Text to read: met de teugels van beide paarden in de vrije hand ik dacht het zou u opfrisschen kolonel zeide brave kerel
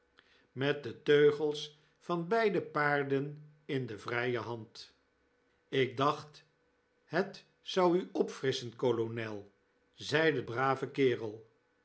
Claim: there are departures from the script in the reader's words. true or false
false